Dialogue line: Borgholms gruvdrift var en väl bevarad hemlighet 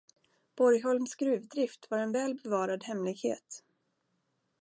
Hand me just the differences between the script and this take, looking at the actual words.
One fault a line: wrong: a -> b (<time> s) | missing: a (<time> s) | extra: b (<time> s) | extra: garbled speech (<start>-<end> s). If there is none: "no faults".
no faults